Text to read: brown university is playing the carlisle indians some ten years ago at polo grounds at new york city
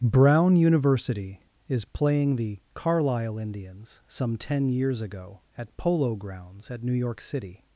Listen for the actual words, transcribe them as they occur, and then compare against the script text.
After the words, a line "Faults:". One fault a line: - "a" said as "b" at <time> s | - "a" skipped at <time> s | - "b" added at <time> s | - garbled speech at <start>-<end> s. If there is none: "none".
brown university is playing the carlisle indians some ten years ago at polo grounds at new york city
Faults:
none